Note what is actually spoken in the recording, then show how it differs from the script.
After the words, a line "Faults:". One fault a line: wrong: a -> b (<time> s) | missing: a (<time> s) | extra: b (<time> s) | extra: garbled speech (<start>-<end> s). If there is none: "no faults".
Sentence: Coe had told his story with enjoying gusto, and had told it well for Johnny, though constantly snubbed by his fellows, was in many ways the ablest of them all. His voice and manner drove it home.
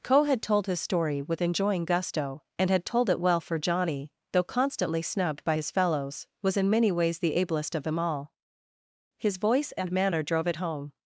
Coe had told his story with enjoying gusto, and had told it well for Johnny, though constantly snubbed by his fellows, was in many ways the ablest of them all. His voice and manner drove it home.
Faults:
no faults